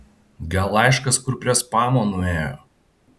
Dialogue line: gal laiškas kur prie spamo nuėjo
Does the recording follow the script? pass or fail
pass